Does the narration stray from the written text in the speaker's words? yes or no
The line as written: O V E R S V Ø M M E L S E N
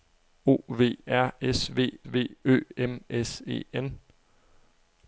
yes